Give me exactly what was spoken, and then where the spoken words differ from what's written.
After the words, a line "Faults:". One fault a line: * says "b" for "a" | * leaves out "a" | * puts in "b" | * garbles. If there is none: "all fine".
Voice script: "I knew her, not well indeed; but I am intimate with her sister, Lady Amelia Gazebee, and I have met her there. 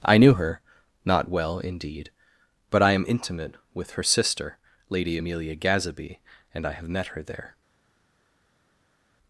"I knew her, not well indeed; but I am intimate with her sister, Lady Amelia Gazebee, and I have met her there.
Faults:
all fine